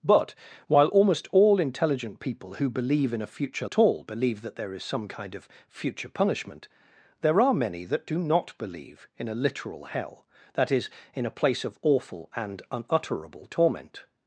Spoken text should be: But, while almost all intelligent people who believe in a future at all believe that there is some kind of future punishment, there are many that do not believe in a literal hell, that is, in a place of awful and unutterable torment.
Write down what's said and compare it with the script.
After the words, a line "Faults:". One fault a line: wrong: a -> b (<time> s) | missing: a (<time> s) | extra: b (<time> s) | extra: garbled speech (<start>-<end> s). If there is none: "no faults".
But, while almost all intelligent people who believe in a future at all believe that there is some kind of future punishment, there are many that do not believe in a literal hell, that is, in a place of awful and unutterable torment.
Faults:
no faults